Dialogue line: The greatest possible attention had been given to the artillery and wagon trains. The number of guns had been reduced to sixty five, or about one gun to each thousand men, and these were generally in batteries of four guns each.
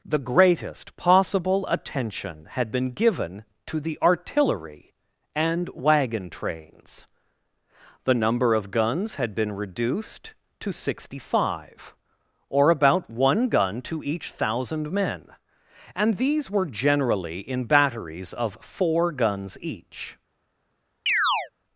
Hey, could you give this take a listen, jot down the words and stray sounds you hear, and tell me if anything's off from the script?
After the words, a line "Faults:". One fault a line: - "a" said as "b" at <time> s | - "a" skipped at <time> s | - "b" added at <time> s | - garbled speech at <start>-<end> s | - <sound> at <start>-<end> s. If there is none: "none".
The greatest possible attention had been given to the artillery and wagon trains. The number of guns had been reduced to sixty five, or about one gun to each thousand men, and these were generally in batteries of four guns each.
Faults:
- chirp at 21.1-21.5 s